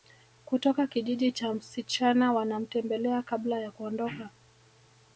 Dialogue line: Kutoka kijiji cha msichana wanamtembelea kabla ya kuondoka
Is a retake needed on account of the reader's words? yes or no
no